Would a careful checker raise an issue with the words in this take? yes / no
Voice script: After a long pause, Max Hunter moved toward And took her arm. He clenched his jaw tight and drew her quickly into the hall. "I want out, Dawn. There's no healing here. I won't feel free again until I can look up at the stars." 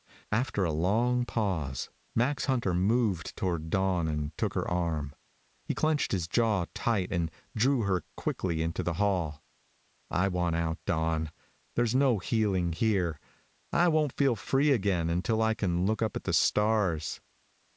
yes